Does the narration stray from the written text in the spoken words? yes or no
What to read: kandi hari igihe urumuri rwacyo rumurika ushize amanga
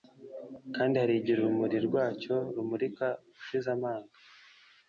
no